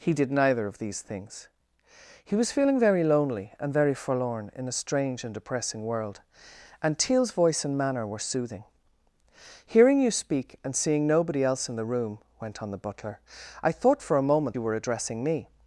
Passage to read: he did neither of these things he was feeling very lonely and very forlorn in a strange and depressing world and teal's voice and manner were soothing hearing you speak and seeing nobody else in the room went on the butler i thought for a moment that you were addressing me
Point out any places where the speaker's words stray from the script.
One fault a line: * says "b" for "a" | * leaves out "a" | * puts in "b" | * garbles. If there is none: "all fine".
* leaves out "that"